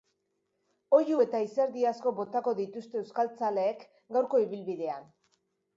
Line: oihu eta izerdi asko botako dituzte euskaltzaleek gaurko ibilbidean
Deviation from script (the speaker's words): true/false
false